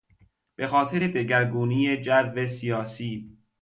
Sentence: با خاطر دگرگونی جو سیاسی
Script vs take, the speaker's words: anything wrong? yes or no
yes